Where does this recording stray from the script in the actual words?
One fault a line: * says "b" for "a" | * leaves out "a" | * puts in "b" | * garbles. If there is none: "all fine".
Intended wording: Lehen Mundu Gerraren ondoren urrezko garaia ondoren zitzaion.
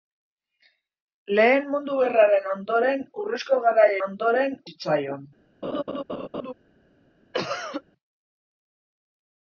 all fine